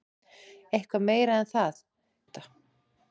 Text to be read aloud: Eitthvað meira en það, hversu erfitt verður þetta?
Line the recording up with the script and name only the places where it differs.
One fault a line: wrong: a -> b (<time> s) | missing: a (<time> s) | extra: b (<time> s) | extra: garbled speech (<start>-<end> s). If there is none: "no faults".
missing: hversu erfitt verður (1.8 s)